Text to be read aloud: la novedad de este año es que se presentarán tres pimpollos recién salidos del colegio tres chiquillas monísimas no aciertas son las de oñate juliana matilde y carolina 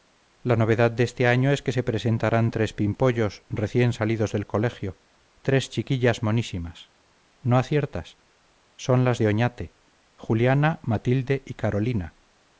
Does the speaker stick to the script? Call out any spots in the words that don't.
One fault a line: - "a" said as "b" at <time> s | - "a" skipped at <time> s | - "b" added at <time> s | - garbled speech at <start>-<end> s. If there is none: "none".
none